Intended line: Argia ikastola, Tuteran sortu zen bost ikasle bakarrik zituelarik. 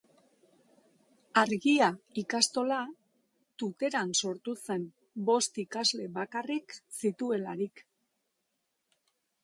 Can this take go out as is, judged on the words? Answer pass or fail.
pass